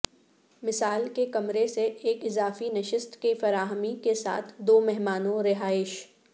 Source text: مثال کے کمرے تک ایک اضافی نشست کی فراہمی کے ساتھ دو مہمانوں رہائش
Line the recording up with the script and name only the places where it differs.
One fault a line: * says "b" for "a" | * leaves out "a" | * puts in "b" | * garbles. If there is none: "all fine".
* says "سے" for "تک"